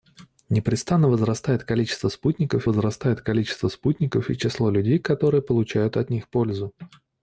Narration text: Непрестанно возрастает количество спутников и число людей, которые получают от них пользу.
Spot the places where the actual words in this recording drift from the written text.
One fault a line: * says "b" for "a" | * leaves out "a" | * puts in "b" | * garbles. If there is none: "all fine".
* puts in "возрастает количество спутников"